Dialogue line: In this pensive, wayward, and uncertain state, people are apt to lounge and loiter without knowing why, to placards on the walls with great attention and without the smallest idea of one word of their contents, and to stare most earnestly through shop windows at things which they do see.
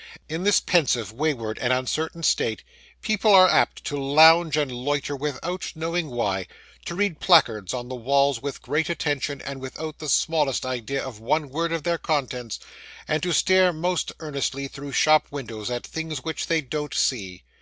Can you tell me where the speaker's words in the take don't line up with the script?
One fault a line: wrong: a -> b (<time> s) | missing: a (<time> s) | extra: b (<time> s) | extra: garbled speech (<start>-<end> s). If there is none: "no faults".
extra: read (6.9 s)
wrong: do -> don't (16.6 s)